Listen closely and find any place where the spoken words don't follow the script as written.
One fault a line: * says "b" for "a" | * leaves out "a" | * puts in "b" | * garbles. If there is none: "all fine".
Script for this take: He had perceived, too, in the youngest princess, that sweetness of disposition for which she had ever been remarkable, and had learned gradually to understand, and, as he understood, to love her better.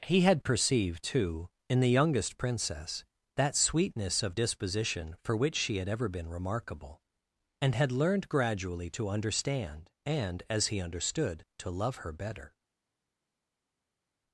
all fine